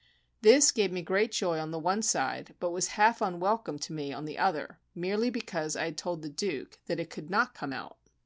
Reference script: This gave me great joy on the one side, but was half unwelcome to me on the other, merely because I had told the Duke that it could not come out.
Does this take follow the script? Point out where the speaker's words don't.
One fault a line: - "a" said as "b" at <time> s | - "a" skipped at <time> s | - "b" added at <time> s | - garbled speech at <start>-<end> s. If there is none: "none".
none